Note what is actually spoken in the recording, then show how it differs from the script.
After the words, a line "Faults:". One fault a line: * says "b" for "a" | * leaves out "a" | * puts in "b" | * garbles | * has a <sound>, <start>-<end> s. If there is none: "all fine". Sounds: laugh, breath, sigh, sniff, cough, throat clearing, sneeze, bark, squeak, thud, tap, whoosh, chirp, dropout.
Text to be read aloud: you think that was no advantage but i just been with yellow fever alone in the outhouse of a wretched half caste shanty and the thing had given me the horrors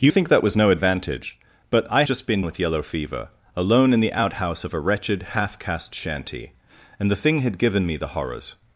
you think that was no advantage but i just been with yellow fever alone in the outhouse of a wretched half caste shanty and the thing had given me the horrors
Faults:
all fine